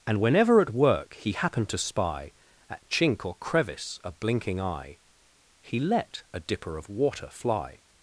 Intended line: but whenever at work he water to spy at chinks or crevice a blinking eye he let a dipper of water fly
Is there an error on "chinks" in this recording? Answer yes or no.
yes